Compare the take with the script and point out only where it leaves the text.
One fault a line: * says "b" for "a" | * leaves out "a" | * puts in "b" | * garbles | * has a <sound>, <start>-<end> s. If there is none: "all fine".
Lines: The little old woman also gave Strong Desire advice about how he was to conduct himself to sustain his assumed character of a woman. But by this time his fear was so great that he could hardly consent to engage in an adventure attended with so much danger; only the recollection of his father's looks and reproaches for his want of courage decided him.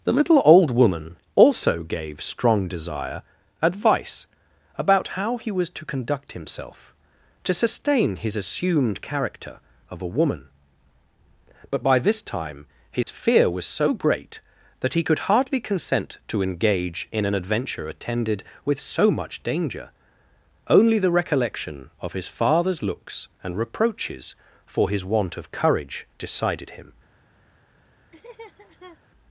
* has a dropout, 13.0-13.1 s
* has a laugh, 28.1-29.0 s